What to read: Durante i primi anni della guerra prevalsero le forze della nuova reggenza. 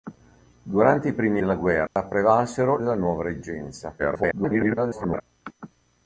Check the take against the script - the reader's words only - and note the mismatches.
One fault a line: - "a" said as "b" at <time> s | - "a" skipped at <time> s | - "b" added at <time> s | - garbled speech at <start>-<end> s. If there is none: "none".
- "anni" skipped at 1.4 s
- "le forze" skipped at 2.8 s
- garbled speech at 4.0-5.2 s